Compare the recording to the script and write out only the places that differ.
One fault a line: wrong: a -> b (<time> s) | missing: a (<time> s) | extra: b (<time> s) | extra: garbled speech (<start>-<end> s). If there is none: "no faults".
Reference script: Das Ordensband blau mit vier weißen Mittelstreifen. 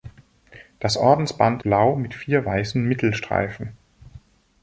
no faults